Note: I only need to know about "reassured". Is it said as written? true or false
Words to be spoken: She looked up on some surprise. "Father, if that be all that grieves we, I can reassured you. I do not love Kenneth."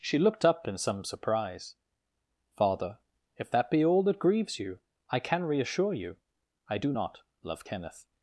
false